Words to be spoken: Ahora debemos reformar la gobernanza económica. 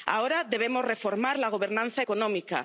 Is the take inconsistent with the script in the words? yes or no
no